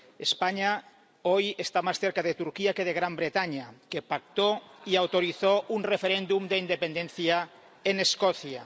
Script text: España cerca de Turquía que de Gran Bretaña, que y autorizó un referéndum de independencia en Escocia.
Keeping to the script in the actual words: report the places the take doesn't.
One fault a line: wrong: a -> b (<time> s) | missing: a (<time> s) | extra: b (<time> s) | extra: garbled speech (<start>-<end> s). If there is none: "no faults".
extra: hoy está más (1.2 s)
extra: pactó (4.0 s)